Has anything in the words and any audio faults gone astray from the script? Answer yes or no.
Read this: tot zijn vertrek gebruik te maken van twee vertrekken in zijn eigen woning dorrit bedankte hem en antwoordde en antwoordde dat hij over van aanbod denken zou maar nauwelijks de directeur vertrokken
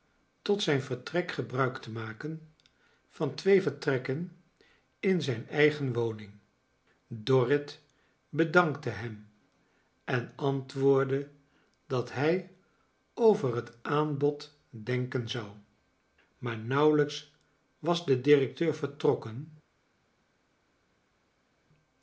yes